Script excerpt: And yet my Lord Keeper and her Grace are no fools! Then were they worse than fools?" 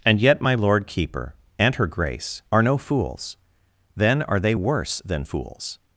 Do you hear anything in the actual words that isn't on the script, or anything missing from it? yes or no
yes